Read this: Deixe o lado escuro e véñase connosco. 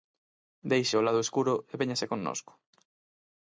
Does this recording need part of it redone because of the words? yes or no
no